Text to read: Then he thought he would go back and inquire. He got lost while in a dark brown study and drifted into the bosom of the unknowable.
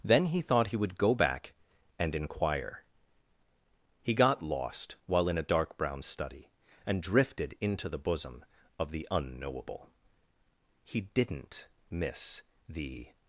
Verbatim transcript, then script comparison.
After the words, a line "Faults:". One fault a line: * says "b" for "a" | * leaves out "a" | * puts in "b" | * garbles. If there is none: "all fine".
Then he thought he would go back and inquire. He got lost while in a dark brown study and drifted into the bosom of the unknowable. He didn't miss the
Faults:
* puts in "He didn't miss the"